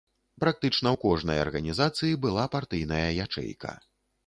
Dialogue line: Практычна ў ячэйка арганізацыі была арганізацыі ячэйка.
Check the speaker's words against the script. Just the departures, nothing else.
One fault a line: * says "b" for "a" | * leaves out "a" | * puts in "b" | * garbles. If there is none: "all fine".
* says "кожнай" for "ячэйка"
* says "партыйная" for "арганізацыі"